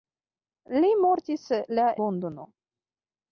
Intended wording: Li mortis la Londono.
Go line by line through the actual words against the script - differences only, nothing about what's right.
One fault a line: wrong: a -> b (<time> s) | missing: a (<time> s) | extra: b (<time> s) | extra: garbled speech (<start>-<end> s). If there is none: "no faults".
no faults